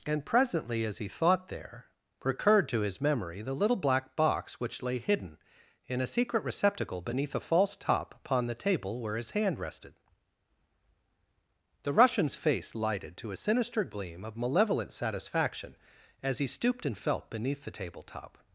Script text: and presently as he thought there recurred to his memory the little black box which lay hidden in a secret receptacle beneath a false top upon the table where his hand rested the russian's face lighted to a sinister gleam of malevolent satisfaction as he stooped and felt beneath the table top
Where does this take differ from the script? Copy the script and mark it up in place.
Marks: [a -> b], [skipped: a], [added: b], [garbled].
and presently as he thought there recurred to his memory the little black box which lay hidden in a secret receptacle beneath a false top upon the table where his hand rested the russian's face lighted to a sinister gleam of malevolent satisfaction as he stooped and felt beneath the table top